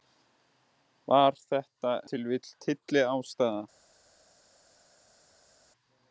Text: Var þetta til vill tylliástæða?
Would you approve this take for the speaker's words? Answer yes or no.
yes